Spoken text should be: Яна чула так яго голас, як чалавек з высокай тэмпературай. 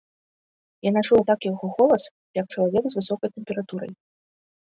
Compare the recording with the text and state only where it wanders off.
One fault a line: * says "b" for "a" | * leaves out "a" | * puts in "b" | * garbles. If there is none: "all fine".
all fine